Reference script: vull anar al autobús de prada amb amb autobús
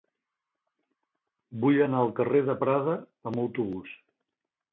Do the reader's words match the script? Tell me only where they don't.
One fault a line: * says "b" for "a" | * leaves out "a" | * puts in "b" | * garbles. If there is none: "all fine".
* says "carrer" for "autobús"
* leaves out "amb"